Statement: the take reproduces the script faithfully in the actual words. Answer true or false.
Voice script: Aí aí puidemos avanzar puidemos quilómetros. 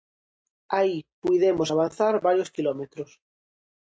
false